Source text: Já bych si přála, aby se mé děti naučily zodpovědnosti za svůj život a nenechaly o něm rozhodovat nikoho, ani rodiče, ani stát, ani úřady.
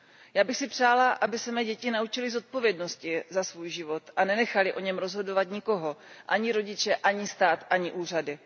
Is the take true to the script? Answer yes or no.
yes